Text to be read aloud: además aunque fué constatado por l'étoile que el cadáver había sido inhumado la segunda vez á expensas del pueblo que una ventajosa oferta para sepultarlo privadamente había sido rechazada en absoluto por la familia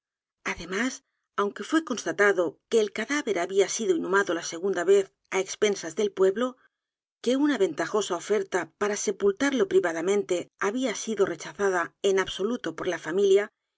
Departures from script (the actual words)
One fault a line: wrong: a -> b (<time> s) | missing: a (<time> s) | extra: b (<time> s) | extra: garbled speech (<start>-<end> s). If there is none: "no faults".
missing: por l'étoile (2.4 s)